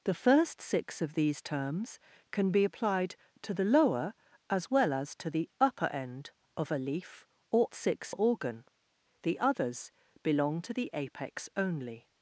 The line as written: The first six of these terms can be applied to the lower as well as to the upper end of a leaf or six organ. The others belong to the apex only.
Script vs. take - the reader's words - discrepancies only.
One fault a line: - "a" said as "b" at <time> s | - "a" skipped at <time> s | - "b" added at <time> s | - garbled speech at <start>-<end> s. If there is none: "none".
none